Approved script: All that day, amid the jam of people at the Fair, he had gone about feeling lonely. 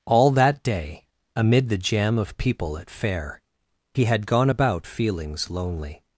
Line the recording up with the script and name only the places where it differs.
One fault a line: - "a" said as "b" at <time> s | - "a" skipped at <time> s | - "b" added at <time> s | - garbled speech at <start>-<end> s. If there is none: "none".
- "the" skipped at 2.9 s
- "feeling" said as "feelings" at 4.9 s